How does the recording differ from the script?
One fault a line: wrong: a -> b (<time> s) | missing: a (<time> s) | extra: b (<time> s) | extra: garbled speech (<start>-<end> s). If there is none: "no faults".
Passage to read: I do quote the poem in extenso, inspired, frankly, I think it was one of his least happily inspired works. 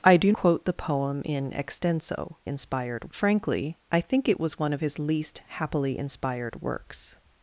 no faults